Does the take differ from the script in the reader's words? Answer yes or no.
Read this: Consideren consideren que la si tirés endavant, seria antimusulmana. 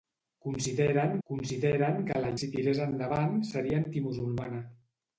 no